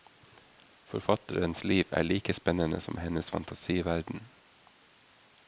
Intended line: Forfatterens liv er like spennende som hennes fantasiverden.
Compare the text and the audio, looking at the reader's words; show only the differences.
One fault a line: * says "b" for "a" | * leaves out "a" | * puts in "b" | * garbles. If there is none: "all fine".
all fine